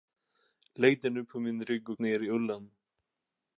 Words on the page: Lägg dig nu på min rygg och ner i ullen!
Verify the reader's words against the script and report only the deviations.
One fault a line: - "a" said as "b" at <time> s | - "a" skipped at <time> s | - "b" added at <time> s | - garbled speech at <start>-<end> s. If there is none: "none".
none